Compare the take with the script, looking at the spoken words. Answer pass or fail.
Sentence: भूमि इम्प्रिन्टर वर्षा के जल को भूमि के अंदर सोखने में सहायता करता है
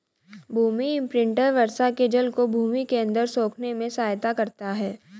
pass